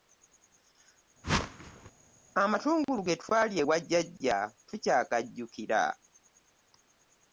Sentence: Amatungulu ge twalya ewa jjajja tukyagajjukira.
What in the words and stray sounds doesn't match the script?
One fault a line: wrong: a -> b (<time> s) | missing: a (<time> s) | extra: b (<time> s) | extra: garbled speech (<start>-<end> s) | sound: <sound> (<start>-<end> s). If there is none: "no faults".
sound: whoosh (1.2-1.9 s)